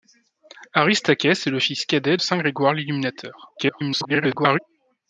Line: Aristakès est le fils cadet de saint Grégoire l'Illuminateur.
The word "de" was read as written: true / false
false